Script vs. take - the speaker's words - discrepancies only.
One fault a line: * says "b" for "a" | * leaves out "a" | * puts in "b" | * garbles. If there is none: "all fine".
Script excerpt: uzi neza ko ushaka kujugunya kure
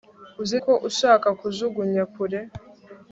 * leaves out "neza"